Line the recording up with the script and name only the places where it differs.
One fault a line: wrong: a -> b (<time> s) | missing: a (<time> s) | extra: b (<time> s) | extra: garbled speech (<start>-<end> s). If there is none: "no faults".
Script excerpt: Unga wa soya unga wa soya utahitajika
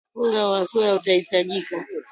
missing: unga wa soya (0.9 s)